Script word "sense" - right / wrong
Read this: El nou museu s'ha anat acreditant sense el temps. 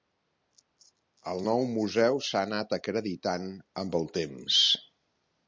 wrong